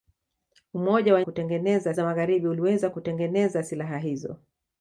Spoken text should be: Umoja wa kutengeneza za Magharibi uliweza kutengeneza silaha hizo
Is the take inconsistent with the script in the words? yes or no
no